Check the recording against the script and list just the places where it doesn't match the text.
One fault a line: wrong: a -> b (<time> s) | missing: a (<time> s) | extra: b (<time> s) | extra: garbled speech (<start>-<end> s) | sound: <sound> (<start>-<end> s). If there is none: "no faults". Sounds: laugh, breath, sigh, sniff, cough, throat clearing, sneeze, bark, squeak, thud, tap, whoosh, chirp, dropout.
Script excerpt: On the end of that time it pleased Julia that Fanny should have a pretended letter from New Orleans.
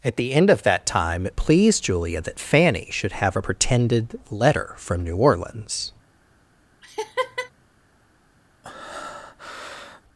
wrong: On -> At (0.0 s)
sound: laugh (6.8-7.5 s)
sound: breath (8.6-10.0 s)